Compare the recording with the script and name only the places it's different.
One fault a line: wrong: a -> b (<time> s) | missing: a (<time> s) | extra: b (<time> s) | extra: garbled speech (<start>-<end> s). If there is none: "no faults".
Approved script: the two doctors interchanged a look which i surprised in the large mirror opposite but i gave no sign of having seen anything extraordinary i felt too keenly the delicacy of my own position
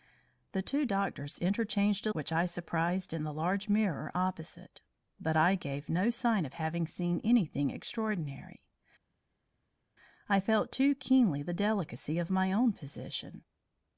missing: look (2.1 s)